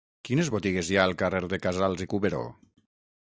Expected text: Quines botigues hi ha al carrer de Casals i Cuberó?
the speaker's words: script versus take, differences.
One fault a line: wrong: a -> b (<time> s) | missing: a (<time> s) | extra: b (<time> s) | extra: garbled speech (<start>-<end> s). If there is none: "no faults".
no faults